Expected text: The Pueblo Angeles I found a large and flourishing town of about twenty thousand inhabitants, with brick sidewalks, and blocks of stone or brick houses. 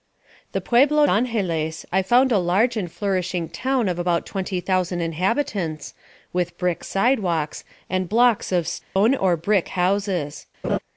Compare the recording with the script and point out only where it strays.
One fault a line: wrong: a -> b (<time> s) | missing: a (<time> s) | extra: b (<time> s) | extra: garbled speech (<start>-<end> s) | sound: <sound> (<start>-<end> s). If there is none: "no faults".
sound: dropout (8.8-9.0 s)
sound: laugh (10.6-10.8 s)